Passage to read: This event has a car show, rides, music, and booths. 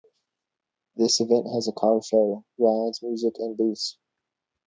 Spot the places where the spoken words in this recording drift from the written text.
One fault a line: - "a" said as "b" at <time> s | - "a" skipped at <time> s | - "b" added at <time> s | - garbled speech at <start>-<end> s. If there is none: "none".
none